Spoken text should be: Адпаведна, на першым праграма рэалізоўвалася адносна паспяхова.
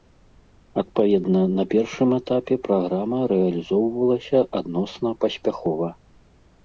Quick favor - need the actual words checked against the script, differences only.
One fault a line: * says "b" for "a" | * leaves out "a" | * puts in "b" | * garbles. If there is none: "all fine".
* puts in "этапе"